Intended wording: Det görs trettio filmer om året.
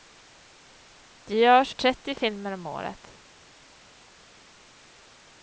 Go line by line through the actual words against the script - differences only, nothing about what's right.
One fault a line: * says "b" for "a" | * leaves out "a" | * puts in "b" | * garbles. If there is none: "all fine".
all fine